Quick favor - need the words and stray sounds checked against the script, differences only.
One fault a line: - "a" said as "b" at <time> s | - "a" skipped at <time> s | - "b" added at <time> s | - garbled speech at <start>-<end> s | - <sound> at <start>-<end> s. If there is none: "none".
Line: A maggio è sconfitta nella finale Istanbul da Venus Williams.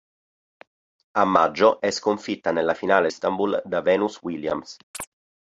- chirp at 4.9-5.1 s